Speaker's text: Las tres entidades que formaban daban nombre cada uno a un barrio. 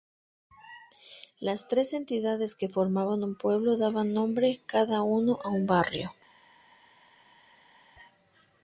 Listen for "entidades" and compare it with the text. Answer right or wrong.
right